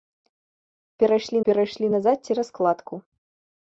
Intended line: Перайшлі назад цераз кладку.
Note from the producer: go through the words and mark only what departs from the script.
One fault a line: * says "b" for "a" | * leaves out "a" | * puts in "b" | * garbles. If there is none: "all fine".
* puts in "перайшлі"